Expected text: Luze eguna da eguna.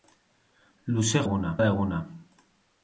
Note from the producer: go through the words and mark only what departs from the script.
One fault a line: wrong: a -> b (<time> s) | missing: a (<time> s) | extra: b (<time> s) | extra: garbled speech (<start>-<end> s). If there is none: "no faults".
no faults